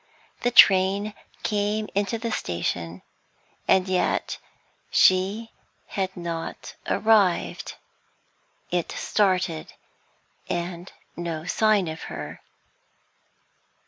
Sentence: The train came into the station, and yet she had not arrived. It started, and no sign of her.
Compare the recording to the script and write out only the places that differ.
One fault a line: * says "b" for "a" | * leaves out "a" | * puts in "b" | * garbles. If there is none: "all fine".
all fine